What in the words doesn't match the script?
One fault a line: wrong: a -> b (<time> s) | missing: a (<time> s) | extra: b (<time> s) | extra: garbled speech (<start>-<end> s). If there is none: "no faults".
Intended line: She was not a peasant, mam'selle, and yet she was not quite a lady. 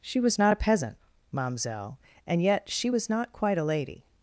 no faults